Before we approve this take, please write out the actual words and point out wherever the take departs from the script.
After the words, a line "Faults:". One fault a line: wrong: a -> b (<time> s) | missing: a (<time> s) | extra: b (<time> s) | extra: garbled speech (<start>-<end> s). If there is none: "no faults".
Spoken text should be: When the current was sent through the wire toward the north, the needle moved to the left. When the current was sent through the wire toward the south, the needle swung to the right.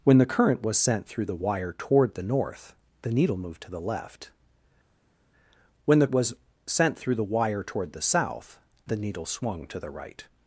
When the current was sent through the wire toward the north, the needle moved to the left. When the was sent through the wire toward the south, the needle swung to the right.
Faults:
missing: current (6.1 s)